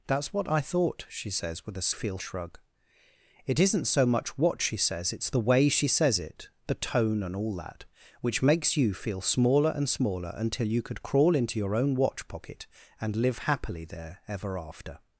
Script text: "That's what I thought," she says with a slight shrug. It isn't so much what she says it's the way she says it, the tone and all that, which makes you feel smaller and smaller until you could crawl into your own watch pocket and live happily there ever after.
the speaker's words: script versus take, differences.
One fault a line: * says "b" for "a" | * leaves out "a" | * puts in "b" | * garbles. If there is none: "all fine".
* says "feel" for "slight"